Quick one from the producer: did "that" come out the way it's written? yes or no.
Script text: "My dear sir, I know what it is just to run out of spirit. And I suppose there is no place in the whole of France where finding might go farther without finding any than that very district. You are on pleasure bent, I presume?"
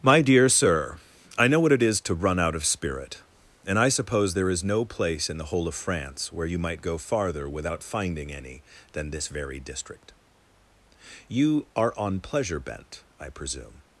no